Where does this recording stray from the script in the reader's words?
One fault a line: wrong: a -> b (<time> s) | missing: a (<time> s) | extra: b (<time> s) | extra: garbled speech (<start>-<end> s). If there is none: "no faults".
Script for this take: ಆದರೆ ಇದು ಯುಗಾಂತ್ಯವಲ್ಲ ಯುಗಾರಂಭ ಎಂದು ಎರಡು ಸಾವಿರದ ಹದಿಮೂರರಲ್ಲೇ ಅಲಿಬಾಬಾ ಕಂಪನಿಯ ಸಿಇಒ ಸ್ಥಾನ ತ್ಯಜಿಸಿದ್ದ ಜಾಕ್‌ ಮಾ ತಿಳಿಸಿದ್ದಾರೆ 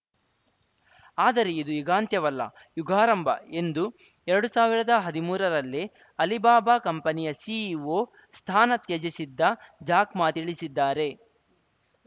no faults